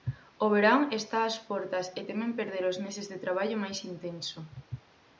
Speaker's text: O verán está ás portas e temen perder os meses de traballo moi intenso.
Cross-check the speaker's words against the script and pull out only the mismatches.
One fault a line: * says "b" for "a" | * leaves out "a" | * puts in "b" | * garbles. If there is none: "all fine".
* says "máis" for "moi"